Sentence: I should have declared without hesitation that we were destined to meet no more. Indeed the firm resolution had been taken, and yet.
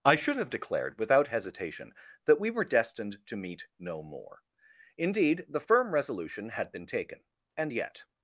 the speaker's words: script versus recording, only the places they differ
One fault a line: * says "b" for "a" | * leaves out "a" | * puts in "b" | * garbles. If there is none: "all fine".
all fine